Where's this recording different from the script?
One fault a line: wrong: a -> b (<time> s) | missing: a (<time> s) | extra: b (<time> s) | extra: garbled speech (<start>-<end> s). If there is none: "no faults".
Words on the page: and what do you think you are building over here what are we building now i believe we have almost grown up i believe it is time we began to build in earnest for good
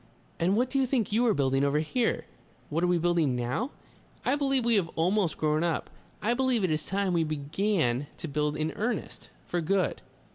no faults